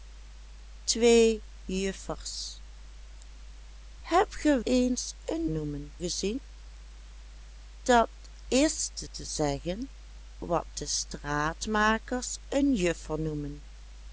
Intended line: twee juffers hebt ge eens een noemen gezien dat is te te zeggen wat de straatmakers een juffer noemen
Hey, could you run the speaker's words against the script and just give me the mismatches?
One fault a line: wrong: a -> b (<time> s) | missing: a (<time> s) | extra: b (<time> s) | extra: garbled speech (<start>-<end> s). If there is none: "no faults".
no faults